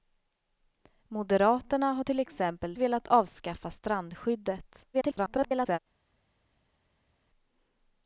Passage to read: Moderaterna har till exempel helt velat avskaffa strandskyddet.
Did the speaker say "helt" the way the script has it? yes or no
no